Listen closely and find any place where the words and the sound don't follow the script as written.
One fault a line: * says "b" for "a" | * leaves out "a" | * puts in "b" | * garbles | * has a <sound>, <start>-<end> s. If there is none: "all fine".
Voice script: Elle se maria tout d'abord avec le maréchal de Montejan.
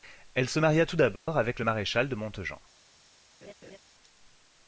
* has a dropout, 1.2-1.3 s
* has a laugh, 3.4-3.8 s